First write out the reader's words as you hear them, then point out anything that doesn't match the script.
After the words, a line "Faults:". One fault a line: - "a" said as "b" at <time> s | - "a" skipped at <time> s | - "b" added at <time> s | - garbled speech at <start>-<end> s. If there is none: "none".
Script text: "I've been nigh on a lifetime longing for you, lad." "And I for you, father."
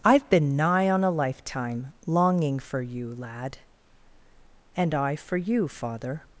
"I've been nigh on a lifetime longing for you, lad." "And I for you, father."
Faults:
none